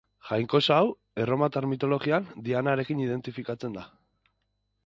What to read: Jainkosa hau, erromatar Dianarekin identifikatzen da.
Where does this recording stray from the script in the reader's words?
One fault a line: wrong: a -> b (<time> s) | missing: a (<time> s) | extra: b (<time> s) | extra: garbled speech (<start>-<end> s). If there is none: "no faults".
extra: mitologian (1.7 s)